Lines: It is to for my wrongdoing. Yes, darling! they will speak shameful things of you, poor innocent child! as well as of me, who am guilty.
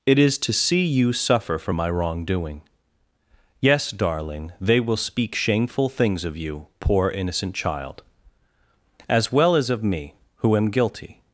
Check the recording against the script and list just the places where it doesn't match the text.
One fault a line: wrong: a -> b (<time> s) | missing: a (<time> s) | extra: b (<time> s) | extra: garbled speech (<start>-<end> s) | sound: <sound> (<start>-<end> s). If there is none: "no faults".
extra: see you suffer (0.5 s)